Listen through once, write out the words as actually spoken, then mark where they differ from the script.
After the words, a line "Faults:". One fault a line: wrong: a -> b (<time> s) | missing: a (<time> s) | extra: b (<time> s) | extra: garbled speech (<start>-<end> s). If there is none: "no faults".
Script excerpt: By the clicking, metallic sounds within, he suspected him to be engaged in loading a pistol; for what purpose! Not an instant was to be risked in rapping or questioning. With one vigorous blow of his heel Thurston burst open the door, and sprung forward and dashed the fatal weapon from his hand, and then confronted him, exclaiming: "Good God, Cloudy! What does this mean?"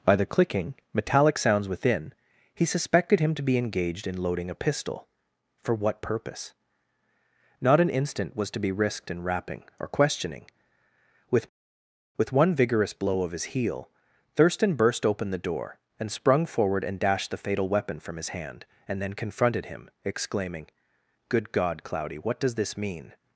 By the clicking, metallic sounds within, he suspected him to be engaged in loading a pistol; for what purpose! Not an instant was to be risked in rapping or questioning. With With one vigorous blow of his heel Thurston burst open the door, and sprung forward and dashed the fatal weapon from his hand, and then confronted him, exclaiming: "Good God, Cloudy! What does this mean?"
Faults:
extra: With (12.2 s)